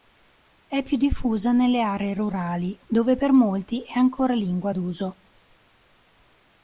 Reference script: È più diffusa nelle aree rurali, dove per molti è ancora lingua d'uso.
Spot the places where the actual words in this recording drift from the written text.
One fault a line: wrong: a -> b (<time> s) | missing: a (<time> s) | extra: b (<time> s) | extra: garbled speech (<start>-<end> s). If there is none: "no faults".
no faults